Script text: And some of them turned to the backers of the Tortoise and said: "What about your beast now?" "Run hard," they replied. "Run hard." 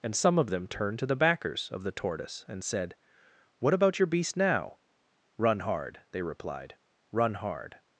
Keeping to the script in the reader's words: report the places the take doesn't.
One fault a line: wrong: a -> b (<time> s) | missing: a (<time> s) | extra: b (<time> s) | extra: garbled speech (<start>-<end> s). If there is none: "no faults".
no faults